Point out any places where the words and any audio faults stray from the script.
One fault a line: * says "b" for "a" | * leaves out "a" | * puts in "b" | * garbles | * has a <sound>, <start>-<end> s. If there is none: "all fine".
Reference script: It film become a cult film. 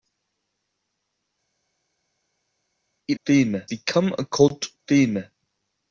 all fine